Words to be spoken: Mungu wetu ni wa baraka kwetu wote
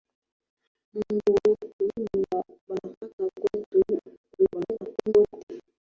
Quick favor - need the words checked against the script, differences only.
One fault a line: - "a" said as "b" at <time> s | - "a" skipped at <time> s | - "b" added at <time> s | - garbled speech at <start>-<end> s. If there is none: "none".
- garbled speech at 4.4-5.1 s